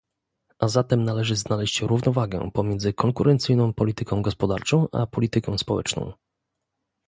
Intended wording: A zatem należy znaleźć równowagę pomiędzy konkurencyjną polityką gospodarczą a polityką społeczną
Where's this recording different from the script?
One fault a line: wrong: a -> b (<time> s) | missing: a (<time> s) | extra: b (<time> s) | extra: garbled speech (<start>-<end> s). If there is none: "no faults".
no faults